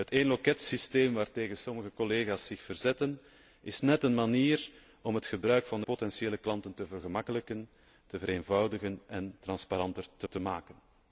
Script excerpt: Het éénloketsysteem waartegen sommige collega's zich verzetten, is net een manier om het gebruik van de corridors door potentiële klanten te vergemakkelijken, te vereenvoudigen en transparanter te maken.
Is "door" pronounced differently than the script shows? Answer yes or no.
yes